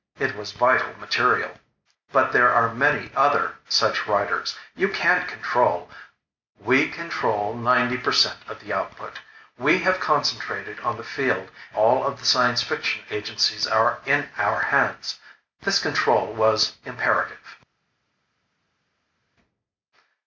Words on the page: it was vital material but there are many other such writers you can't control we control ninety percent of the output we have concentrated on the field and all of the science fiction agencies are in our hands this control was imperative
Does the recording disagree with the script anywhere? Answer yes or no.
yes